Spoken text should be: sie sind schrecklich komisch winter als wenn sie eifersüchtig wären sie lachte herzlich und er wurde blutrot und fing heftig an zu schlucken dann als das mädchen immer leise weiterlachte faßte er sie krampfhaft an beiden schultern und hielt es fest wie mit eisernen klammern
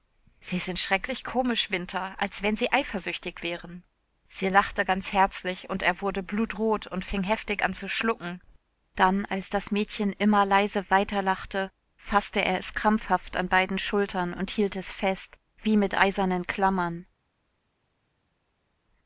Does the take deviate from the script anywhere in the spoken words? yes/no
yes